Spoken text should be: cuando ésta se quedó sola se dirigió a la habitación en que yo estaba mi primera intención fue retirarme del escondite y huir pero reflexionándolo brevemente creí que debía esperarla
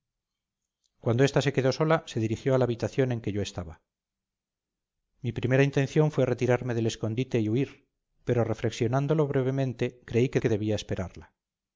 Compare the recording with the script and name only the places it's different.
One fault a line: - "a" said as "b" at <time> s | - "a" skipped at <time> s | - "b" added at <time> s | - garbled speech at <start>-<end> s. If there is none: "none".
- "que" added at 10.4 s